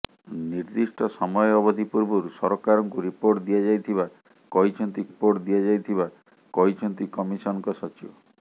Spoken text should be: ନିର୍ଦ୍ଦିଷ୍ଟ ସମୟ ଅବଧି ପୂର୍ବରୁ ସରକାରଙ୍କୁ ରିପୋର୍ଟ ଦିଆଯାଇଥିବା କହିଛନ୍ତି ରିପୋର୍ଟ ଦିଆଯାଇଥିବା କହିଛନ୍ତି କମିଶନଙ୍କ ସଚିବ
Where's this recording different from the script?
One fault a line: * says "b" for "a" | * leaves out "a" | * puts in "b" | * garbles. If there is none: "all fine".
all fine